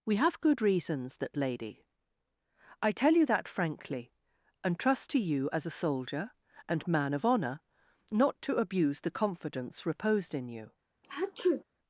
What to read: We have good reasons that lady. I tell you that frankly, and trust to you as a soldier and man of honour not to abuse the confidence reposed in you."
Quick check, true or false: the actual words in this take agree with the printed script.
true